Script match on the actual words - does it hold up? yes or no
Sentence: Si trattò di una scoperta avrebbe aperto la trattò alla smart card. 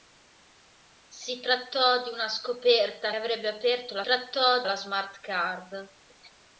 yes